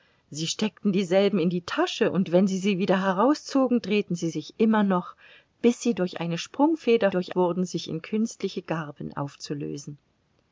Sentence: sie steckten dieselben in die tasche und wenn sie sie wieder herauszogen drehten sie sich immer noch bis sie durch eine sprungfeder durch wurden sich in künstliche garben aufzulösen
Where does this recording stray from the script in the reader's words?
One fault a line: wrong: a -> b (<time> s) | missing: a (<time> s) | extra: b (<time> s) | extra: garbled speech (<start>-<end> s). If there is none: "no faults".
no faults